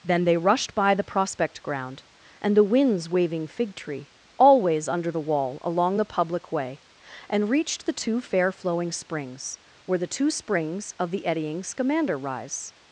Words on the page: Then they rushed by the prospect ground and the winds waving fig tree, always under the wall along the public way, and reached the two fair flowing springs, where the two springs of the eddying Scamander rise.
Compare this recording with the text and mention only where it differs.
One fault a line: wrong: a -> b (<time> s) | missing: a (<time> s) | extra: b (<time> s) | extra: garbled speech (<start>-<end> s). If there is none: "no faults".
no faults